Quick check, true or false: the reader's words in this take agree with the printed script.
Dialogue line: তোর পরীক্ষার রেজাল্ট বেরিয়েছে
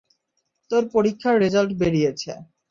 true